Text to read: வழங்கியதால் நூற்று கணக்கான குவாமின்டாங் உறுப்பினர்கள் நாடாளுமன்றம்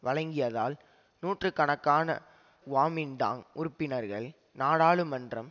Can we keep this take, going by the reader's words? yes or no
yes